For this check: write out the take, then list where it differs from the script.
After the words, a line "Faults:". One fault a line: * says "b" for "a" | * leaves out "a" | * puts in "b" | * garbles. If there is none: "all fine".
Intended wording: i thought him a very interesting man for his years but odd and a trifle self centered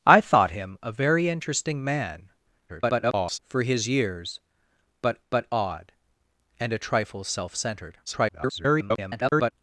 i thought him a very interesting man [garbled] for his years but but odd and a trifle self centered [garbled]
Faults:
* garbles
* puts in "but"
* garbles